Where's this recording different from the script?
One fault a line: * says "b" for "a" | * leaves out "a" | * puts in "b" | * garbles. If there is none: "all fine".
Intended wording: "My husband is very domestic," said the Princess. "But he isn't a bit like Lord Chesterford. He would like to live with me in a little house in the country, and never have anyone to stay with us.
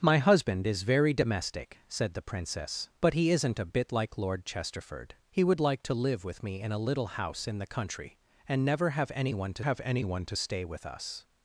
* puts in "have anyone to"